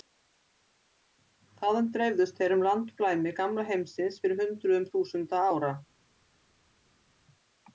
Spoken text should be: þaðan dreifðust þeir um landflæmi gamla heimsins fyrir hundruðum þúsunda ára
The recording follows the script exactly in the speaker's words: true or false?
true